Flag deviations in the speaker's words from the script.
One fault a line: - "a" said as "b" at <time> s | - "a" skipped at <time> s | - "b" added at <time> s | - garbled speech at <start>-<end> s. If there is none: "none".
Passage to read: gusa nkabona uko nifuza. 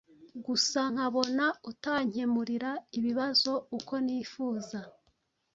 - "utankemurira ibibazo" added at 1.7 s